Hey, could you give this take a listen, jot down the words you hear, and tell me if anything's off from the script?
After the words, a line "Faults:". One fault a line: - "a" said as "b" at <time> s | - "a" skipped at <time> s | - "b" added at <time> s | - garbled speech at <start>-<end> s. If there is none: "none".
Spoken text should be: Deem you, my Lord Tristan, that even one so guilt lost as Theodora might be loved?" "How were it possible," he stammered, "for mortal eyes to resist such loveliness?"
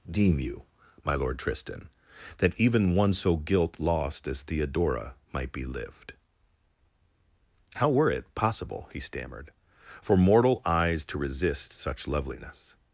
Deem you, my Lord Tristan, that even one so guilt lost as Theodora might be lived?" "How were it possible," he stammered, "for mortal eyes to resist such loveliness?"
Faults:
- "loved" said as "lived" at 5.7 s